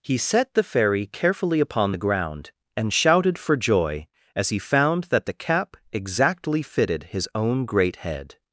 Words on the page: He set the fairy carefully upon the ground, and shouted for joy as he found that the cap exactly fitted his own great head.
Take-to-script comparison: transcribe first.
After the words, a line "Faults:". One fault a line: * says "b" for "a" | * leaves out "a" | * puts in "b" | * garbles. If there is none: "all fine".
He set the fairy carefully upon the ground, and shouted for joy as he found that the cap exactly fitted his own great head.
Faults:
all fine